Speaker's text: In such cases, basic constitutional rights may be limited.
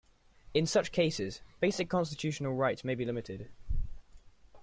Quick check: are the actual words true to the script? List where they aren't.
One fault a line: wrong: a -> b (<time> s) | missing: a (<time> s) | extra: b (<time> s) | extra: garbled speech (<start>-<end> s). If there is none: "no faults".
no faults